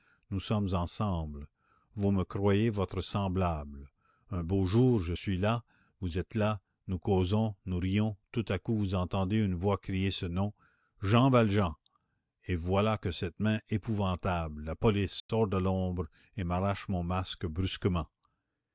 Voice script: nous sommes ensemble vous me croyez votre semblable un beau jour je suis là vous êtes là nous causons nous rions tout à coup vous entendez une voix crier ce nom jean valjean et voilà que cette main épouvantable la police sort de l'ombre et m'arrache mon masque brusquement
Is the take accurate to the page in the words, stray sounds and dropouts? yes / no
no